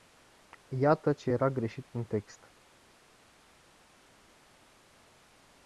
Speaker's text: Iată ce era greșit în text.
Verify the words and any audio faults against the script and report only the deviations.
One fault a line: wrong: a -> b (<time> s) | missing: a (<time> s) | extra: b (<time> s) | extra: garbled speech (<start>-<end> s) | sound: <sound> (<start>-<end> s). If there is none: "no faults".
no faults